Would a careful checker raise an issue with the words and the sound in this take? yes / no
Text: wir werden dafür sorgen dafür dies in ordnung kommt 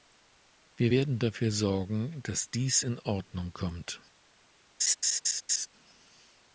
yes